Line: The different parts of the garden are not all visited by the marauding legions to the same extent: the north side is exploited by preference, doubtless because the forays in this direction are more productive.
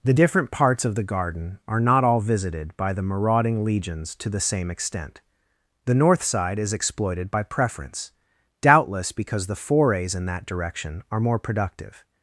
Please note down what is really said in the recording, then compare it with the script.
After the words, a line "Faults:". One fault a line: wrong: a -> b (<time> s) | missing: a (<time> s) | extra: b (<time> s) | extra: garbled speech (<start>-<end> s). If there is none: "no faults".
The different parts of the garden are not all visited by the marauding legions to the same extent: the north side is exploited by preference, doubtless because the forays in that direction are more productive.
Faults:
wrong: this -> that (10.3 s)